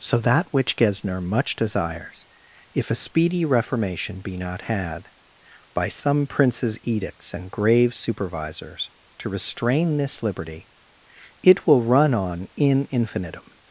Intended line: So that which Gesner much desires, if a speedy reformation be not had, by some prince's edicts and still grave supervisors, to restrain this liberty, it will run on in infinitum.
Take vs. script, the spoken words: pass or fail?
fail